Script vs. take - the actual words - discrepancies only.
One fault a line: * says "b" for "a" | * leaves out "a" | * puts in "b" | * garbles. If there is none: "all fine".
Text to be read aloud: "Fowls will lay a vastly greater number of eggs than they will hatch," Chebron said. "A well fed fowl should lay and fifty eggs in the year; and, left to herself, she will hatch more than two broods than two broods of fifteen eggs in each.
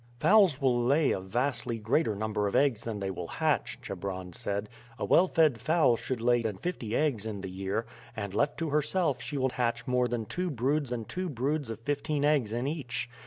all fine